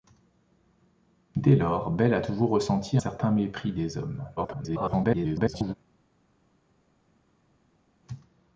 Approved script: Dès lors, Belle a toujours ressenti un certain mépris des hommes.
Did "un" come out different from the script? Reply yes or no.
yes